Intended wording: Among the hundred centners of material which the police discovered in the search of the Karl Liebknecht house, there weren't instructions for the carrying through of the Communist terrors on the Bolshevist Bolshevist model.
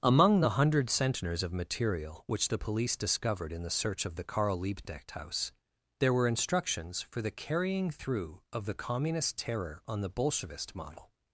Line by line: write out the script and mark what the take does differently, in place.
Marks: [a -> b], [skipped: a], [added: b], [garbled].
Among the hundred centners of material which the police discovered in the search of the Karl Liebknecht house, there [weren't -> were] instructions for the carrying through of the Communist [terrors -> terror] on the Bolshevist [skipped: Bolshevist] model.